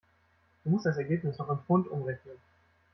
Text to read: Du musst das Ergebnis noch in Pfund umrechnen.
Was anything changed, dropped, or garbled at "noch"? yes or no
no